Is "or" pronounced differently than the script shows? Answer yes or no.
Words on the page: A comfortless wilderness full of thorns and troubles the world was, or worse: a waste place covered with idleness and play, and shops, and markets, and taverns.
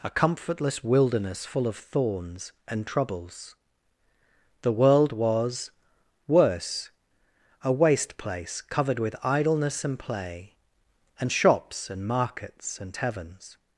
yes